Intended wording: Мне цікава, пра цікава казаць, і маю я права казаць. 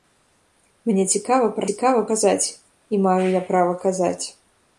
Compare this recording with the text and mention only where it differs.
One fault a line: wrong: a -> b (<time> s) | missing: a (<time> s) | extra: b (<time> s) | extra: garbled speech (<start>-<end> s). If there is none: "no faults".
no faults